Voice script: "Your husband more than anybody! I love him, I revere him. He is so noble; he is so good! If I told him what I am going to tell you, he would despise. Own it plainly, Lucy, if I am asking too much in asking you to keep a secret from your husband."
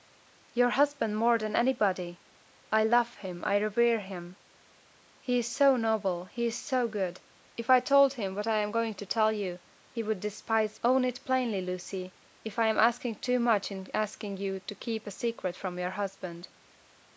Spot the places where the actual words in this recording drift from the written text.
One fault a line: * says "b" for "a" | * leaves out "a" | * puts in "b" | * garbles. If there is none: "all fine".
all fine